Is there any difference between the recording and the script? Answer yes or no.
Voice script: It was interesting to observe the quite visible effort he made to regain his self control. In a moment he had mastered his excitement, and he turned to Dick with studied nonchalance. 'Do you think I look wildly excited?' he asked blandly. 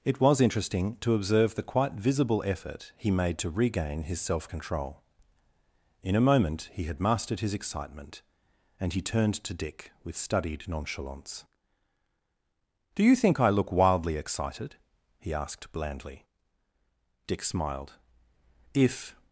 yes